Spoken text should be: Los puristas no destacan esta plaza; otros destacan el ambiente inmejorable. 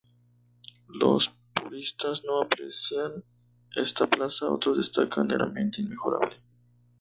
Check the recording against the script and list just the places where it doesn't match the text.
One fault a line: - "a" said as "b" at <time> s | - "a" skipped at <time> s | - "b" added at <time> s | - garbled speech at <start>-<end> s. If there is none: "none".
- "destacan" said as "aprecian" at 2.4 s